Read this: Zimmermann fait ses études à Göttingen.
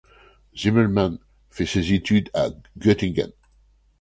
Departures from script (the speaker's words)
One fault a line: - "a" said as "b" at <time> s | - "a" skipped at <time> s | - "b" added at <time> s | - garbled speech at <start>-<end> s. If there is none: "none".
none